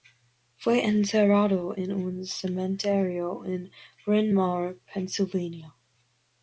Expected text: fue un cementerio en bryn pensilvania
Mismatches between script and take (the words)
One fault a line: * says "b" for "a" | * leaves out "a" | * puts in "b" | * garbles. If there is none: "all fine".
* puts in "enterrado en"
* puts in "mawr"